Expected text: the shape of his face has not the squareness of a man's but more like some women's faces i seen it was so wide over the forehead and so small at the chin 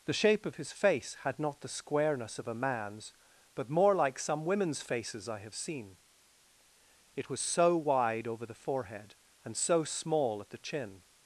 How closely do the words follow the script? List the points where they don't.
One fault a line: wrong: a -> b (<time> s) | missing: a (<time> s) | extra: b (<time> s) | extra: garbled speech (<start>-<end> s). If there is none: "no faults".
wrong: has -> had (1.2 s)
extra: have (5.4 s)